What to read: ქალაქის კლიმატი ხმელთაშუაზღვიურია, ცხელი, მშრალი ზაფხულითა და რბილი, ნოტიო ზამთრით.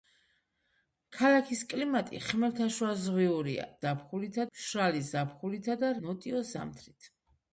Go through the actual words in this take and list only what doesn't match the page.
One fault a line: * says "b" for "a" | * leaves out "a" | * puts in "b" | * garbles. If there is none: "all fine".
* says "ზაფხულითა" for "ცხელი"
* leaves out "რბილი"